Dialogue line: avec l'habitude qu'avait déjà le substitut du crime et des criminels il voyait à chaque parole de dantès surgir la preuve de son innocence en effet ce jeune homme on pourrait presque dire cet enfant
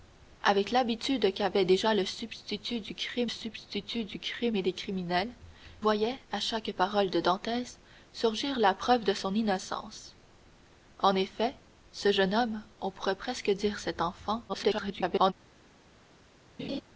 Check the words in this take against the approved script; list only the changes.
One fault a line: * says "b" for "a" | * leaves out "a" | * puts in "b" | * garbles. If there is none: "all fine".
* puts in "substitut du crime"
* leaves out "il"
* garbles